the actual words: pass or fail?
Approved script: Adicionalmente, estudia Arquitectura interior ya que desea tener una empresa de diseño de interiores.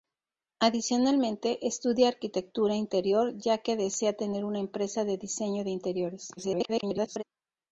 fail